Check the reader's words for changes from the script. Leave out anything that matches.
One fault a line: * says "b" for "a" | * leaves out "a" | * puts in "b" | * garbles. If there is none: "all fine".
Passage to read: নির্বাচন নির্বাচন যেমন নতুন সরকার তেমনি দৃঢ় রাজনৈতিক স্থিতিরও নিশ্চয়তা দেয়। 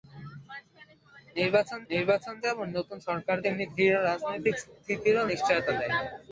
all fine